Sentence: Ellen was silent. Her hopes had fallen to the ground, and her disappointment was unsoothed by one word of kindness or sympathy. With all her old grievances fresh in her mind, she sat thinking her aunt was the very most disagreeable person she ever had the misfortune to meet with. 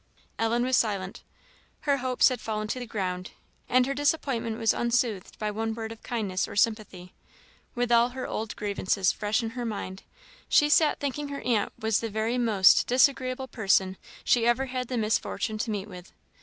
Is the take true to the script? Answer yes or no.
yes